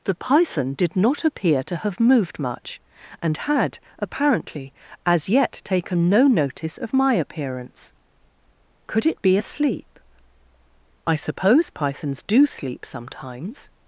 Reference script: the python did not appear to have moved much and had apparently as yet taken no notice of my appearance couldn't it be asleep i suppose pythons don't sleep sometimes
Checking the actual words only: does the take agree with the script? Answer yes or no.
no